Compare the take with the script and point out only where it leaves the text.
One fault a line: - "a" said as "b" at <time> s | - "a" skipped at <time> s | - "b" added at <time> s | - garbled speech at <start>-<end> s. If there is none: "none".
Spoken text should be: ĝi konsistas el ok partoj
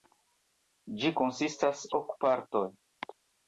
- "el" skipped at 1.8 s